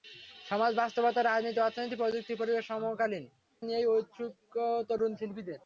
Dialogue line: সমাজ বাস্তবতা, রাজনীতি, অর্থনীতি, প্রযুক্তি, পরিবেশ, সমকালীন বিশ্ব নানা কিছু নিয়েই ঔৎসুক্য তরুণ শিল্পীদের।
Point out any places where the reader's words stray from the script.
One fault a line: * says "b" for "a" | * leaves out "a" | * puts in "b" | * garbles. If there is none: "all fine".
* leaves out "বিশ্ব নানা কিছু"